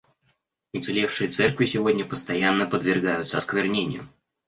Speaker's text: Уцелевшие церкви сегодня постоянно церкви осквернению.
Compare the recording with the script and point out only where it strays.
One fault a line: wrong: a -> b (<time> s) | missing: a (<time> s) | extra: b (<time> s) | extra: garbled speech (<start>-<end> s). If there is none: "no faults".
wrong: церкви -> подвергаются (2.7 s)